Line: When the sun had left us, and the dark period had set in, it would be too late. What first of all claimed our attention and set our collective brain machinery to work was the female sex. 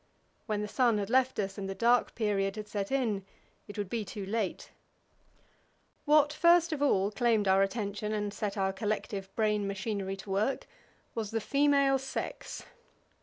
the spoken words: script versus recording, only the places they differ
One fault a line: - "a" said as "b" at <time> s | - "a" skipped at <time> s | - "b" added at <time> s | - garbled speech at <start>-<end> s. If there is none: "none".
none